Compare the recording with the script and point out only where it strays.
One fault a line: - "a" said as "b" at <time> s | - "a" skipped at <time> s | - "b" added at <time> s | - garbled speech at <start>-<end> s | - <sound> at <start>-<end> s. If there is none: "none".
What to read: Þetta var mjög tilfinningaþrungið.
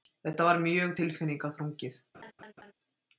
- laugh at 2.1-2.7 s